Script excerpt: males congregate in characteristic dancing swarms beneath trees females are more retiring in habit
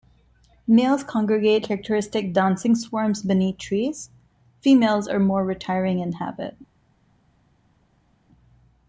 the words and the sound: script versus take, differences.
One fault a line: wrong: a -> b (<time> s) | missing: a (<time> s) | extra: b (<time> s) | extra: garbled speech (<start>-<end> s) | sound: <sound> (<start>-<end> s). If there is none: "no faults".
missing: in (1.6 s)